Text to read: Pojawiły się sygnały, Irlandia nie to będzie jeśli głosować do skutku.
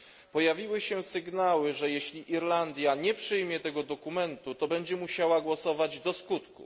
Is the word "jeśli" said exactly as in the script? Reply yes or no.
no